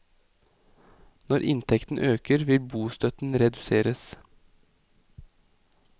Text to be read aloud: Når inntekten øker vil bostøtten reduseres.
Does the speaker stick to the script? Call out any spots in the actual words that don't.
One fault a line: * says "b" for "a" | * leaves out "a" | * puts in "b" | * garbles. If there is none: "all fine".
all fine